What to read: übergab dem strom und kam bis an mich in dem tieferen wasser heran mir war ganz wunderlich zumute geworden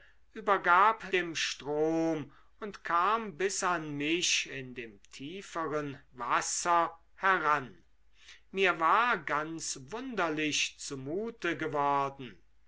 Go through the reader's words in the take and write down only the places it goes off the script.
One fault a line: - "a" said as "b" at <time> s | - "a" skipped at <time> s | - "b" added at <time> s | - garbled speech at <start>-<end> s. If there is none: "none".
none